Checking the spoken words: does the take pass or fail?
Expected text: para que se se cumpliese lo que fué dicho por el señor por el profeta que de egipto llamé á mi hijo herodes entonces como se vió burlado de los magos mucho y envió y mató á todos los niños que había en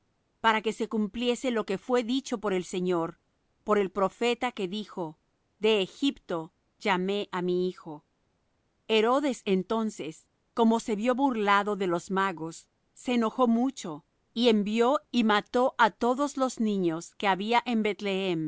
fail